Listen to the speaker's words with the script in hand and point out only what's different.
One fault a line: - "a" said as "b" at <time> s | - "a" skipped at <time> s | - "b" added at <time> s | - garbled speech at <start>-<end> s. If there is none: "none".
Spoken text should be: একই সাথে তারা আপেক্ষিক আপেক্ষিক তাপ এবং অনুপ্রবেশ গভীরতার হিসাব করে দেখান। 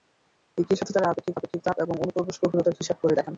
none